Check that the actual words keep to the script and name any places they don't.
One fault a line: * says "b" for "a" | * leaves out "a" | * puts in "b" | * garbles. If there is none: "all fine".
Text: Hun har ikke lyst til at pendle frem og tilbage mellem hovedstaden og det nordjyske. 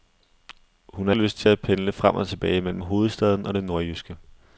* leaves out "ikke"